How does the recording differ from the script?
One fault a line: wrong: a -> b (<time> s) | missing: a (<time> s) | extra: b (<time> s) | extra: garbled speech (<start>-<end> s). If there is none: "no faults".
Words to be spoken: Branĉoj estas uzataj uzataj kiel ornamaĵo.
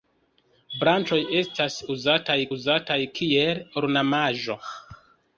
no faults